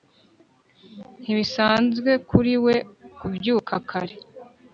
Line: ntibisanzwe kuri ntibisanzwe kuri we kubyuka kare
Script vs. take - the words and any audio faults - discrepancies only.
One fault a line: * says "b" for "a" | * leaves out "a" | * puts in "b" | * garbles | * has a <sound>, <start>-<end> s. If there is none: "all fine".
* leaves out "ntibisanzwe kuri"